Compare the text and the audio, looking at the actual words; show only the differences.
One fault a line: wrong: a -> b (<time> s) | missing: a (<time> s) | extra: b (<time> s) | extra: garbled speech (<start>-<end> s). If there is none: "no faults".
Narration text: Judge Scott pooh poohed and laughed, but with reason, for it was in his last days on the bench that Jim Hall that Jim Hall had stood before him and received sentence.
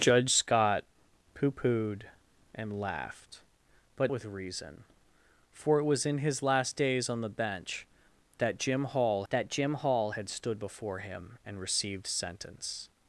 no faults